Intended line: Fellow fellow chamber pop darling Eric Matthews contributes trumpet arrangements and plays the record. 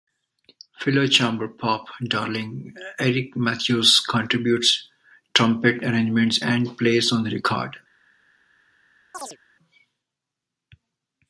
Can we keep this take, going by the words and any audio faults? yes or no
no